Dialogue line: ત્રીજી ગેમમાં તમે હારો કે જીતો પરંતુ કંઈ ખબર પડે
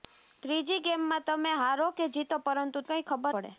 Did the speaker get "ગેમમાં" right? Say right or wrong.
right